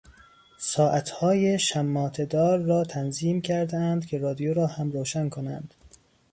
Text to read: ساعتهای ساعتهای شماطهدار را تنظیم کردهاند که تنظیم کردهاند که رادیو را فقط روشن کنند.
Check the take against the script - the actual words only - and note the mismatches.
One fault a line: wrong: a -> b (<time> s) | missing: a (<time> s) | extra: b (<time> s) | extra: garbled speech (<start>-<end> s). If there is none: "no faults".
missing: ساعتهای (1.6 s)
missing: تنظیم کردهاند که (4.2 s)
wrong: فقط -> هم (4.7 s)